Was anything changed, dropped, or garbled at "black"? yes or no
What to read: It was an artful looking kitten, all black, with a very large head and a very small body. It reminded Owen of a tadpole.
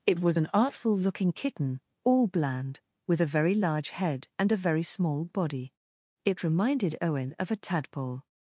yes